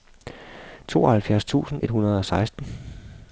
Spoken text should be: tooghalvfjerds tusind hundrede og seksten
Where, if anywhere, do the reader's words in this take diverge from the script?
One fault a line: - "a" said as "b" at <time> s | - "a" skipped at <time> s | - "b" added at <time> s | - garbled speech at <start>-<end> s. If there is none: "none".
- "et" added at 1.8 s